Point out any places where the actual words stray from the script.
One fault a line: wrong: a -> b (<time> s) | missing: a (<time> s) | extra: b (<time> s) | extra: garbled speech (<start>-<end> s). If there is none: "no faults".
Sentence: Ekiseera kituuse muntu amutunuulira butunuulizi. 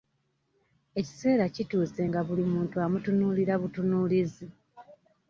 extra: nga buli (2.1 s)